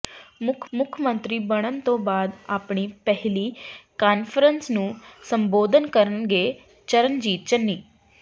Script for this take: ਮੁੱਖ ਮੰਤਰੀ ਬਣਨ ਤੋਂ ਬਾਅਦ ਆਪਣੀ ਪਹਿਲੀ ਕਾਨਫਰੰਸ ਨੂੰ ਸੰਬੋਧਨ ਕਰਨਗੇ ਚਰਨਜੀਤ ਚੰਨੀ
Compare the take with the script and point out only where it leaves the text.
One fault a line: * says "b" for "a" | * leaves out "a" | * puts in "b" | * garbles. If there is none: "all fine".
* puts in "ਮੁੱਖ"